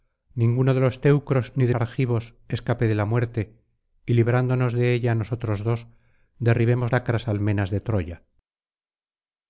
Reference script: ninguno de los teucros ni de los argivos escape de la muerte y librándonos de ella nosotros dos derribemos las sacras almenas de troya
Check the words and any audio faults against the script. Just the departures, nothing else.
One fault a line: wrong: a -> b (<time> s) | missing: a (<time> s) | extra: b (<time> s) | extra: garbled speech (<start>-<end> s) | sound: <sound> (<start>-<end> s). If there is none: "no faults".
missing: los (1.8 s)
missing: las (6.9 s)